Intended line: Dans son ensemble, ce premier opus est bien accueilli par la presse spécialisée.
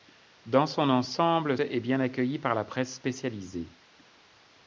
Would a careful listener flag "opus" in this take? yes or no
yes